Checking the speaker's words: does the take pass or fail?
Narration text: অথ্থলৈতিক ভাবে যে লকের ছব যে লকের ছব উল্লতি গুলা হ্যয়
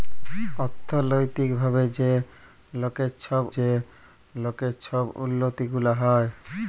pass